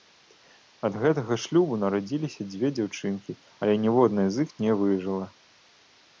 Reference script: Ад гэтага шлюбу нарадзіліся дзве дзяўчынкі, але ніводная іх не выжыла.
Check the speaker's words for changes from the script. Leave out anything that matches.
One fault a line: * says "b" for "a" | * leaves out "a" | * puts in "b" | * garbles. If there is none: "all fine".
* puts in "з"